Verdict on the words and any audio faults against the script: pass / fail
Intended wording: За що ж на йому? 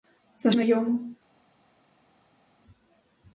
fail